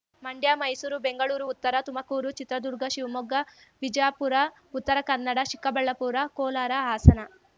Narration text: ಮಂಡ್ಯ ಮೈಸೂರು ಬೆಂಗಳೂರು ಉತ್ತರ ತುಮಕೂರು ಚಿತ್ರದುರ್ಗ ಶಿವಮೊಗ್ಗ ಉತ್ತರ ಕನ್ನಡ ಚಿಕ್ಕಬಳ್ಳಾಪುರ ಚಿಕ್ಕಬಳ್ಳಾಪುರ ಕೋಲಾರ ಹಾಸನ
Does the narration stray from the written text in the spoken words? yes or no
yes